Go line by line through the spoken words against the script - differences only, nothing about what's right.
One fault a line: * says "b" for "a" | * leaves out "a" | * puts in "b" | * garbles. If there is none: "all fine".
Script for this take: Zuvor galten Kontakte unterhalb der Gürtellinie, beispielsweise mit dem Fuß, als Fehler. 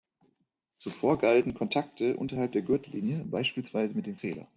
* leaves out "Fuß als"